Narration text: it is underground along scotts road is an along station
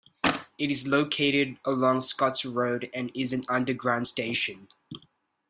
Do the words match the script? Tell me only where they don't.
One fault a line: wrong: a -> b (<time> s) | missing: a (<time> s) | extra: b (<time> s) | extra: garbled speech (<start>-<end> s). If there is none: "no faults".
wrong: underground -> located (0.9 s)
extra: and (2.9 s)
wrong: along -> underground (3.5 s)